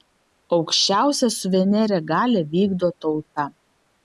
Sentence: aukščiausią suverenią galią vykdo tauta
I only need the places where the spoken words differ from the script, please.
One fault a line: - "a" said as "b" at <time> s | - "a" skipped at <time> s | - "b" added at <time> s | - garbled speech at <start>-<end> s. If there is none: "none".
none